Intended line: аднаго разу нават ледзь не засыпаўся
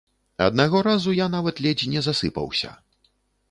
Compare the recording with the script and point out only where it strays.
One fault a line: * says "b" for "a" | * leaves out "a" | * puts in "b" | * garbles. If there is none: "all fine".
* puts in "я"